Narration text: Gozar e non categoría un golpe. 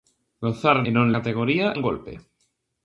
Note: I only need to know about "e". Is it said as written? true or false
true